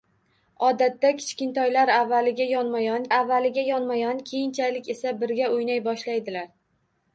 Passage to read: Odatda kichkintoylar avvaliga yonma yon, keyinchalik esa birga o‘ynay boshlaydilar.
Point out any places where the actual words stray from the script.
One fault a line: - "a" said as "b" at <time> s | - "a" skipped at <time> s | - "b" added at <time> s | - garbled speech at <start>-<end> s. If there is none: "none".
- "avvaliga yonma yon" added at 3.1 s